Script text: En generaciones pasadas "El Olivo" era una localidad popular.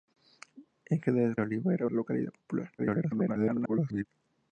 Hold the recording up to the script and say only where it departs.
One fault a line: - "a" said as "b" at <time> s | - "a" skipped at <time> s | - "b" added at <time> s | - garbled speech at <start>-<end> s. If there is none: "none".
- "pasadas El" skipped at 1.4 s
- "una" skipped at 1.9 s
- garbled speech at 2.8-4.1 s